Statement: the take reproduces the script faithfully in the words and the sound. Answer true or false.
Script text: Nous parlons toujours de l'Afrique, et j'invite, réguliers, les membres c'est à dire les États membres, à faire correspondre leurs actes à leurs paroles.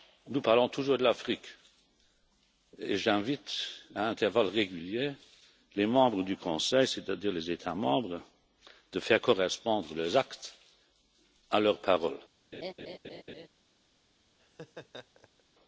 false